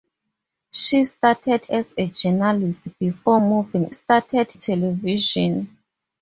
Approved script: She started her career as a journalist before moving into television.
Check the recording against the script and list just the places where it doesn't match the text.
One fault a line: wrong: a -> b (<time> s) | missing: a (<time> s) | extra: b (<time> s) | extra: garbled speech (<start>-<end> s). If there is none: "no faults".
missing: her career (1.6 s)
wrong: into -> started (3.9 s)